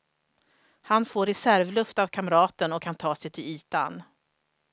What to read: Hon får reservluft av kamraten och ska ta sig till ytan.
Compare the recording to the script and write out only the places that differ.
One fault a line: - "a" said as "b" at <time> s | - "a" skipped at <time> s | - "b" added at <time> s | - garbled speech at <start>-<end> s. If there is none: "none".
- "Hon" said as "Han" at 0.8 s
- "ska" said as "kan" at 2.8 s